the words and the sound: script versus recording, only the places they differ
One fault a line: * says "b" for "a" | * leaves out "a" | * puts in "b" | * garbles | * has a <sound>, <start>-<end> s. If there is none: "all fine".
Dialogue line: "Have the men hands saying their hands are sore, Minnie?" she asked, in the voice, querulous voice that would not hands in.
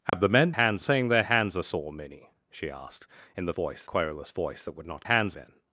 * has a dropout, 0.1-0.1 s